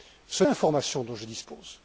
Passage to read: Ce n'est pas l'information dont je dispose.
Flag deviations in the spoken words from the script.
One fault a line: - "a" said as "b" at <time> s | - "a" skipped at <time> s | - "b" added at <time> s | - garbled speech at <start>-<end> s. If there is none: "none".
- "n'est pas" skipped at 0.4 s